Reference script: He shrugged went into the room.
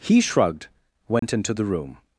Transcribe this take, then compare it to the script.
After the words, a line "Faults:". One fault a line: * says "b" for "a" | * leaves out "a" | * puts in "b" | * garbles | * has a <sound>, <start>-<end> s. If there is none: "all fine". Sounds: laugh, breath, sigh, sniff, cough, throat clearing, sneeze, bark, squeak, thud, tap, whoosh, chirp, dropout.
He shrugged went into the room.
Faults:
* has a dropout, 1.2-1.2 s